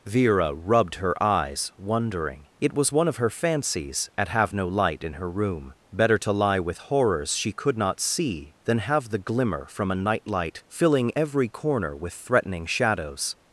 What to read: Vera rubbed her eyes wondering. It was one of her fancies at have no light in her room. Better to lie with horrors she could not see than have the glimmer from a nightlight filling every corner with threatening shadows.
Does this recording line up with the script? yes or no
yes